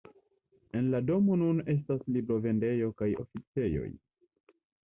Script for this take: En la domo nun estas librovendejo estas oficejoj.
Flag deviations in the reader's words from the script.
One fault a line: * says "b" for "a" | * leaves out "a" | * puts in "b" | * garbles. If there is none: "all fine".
* says "kaj" for "estas"